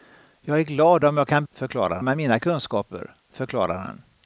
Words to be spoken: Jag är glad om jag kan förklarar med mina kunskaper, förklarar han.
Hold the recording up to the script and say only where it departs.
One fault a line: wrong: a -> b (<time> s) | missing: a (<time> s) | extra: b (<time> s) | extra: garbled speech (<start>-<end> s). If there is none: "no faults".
no faults